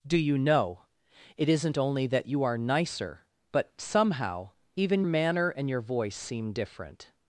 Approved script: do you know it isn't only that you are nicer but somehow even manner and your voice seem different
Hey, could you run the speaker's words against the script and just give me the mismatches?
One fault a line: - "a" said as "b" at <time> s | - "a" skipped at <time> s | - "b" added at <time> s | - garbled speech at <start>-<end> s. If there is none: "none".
none